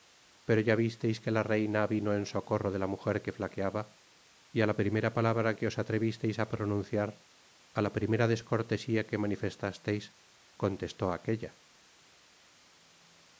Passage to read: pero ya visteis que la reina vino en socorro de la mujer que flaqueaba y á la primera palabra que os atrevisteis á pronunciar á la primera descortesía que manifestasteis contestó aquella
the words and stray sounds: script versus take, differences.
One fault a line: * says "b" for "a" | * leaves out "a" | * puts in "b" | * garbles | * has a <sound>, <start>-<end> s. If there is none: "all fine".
all fine